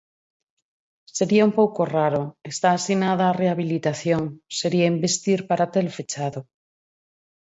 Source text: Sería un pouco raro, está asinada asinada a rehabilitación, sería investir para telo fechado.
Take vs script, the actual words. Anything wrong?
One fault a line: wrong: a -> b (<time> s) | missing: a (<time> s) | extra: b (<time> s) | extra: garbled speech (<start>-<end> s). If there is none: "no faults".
missing: asinada (3.2 s)